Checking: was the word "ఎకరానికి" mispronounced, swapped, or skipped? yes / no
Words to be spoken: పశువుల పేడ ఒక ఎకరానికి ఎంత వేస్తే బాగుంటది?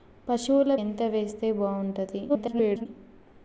yes